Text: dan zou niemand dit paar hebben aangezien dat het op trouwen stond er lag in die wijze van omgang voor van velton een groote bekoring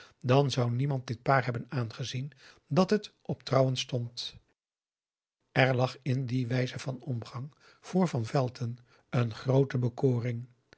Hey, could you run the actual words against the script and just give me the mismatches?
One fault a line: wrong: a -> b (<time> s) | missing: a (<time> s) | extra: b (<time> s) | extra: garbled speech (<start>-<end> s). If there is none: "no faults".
no faults